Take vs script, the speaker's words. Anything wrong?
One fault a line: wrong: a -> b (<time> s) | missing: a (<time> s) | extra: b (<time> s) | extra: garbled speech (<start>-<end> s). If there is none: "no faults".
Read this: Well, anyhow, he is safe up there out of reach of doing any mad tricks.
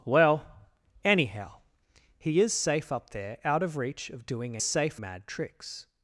wrong: any -> safe (4.6 s)